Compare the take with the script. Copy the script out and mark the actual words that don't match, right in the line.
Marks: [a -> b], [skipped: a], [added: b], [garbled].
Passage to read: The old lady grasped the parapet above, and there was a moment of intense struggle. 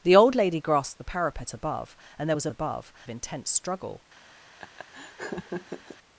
The old lady grasped the parapet above, and there was a [moment -> above] of intense struggle.